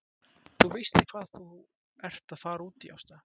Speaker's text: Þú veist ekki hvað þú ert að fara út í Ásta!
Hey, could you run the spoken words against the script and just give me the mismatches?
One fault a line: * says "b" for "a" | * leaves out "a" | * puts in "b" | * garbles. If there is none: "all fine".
* leaves out "ekki"